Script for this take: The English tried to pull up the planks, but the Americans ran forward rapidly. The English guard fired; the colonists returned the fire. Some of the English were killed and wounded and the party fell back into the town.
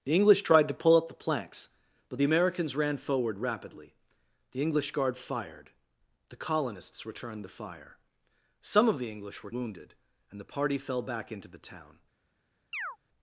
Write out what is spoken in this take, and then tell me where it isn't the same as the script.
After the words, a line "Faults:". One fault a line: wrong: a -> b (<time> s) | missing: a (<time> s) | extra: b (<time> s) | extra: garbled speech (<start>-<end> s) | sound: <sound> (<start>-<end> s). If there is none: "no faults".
The English tried to pull up the planks, but the Americans ran forward rapidly. The English guard fired; the colonists returned the fire. Some of the English were wounded and the party fell back into the town.
Faults:
missing: killed and (9.5 s)
sound: chirp (12.7-13.0 s)